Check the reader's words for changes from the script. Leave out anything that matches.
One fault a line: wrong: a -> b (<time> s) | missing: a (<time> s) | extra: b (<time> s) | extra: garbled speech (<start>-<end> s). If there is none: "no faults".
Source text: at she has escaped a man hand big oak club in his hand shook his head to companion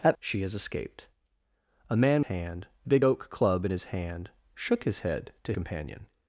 no faults